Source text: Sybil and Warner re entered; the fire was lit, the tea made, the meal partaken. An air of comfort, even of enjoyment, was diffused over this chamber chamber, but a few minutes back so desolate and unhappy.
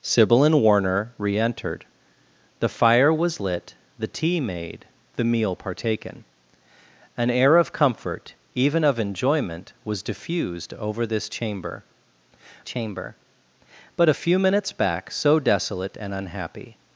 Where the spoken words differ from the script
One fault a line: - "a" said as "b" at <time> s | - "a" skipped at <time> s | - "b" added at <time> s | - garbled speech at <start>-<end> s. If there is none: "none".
none